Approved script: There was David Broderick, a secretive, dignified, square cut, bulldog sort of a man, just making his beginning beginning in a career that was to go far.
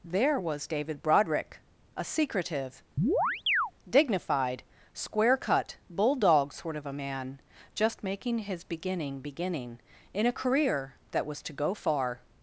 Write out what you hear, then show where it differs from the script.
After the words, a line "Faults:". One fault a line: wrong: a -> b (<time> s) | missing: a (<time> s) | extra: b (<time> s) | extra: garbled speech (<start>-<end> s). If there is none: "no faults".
There was David Broderick, a secretive, dignified, square cut, bulldog sort of a man, just making his beginning beginning in a career that was to go far.
Faults:
no faults